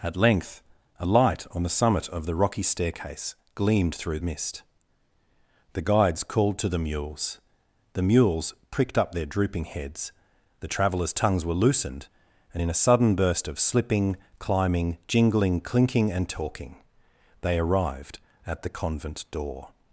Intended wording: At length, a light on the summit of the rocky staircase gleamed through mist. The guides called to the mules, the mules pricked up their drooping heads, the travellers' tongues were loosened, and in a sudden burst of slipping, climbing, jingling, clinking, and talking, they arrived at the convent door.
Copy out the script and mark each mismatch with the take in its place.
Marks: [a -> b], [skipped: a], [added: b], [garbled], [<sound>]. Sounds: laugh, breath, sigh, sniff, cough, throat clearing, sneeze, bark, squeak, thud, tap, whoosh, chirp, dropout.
At length, a light on the summit of the rocky staircase gleamed through mist. The guides called to the mules, the mules pricked up their drooping heads, the travellers' tongues were loosened, and in a sudden burst of slipping, climbing, jingling, clinking, and talking, they arrived at the convent door.